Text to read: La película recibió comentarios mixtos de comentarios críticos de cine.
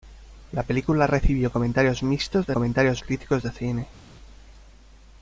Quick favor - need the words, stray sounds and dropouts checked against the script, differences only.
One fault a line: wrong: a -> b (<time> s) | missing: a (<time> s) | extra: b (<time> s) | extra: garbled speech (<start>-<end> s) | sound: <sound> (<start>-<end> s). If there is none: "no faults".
no faults